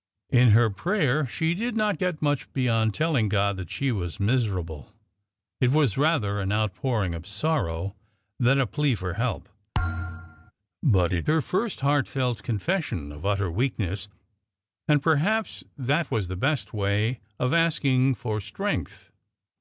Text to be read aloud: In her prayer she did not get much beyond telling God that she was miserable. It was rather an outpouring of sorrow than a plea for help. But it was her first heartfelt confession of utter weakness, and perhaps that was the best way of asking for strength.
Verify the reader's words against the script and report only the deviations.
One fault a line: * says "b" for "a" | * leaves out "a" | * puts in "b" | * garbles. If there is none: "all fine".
* leaves out "was"